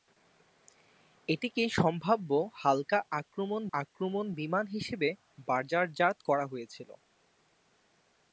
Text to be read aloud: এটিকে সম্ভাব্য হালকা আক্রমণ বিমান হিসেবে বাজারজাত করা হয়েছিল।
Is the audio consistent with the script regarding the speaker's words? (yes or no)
no